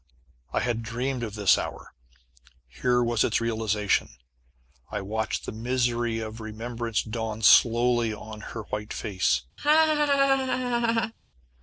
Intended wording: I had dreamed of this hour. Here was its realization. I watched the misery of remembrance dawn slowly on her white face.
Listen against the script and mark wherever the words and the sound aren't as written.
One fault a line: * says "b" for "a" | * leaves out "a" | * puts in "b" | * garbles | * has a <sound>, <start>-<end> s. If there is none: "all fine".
* has a laugh, 9.6-11.1 s